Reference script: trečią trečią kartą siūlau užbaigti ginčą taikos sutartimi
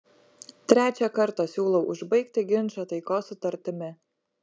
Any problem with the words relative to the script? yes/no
yes